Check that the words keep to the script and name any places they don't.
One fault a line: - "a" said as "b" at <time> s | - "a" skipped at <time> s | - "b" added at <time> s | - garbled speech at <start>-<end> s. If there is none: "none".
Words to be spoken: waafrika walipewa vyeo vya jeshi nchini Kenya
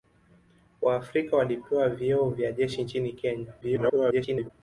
- garbled speech at 3.6-4.5 s